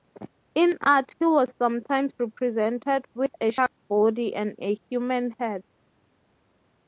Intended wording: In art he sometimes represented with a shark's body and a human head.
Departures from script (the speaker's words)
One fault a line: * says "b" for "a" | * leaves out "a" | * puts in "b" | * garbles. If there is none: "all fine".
* puts in "was"